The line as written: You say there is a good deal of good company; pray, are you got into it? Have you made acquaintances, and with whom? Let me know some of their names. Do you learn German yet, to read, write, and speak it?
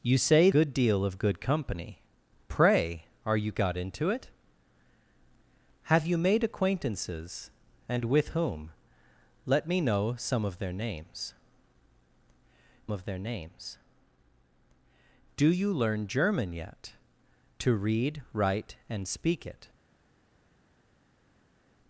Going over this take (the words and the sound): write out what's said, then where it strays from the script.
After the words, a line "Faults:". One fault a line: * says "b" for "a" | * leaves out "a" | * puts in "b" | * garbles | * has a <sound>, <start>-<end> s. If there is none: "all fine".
You say good deal of good company; pray, are you got into it? Have you made acquaintances, and with whom? Let me know some of their names of their names. Do you learn German yet, to read, write, and speak it?
Faults:
* leaves out "there is a"
* puts in "of their names"